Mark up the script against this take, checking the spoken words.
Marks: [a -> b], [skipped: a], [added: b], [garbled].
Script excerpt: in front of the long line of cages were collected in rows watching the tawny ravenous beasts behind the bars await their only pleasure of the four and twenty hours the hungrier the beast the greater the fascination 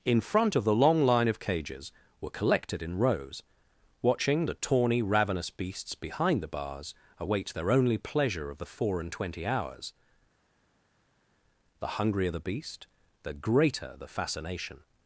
in front of the long line of cages were collected in rows watching the tawny ravenous beasts behind the bars await their only pleasure of the four and twenty hours the hungrier the beast the greater the fascination